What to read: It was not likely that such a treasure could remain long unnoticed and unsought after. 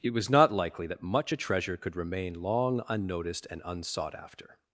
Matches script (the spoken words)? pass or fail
fail